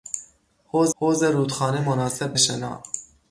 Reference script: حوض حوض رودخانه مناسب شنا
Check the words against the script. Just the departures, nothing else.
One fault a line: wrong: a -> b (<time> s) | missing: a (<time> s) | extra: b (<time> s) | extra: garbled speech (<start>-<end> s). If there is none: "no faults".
no faults